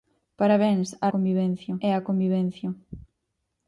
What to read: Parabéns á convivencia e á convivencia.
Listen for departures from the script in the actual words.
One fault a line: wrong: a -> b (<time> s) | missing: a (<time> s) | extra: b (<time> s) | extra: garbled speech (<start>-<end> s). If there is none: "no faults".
no faults